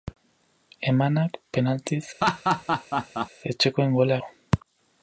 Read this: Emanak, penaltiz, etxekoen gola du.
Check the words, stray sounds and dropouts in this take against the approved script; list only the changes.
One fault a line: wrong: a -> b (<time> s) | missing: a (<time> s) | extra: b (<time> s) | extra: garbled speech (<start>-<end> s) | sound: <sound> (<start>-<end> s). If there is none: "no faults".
sound: laugh (2.2-3.3 s)